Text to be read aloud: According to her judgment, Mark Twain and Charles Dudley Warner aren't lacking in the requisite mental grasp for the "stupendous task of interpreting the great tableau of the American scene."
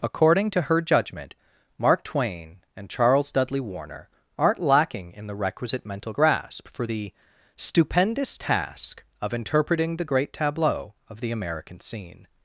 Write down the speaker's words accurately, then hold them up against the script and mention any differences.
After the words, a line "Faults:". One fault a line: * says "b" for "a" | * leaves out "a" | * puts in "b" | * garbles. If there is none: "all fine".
According to her judgment, Mark Twain and Charles Dudley Warner aren't lacking in the requisite mental grasp for the "stupendous task of interpreting the great tableau of the American scene."
Faults:
all fine